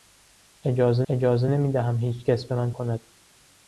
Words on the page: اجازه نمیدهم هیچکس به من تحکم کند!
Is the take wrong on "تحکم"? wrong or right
wrong